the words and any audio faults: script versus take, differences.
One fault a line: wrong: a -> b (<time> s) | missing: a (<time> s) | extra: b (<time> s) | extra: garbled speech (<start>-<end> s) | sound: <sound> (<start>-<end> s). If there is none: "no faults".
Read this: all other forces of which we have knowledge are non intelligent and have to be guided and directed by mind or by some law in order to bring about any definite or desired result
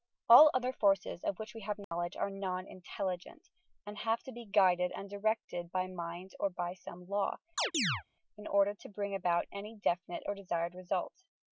sound: dropout (1.8-1.9 s)
sound: chirp (7.6-8.0 s)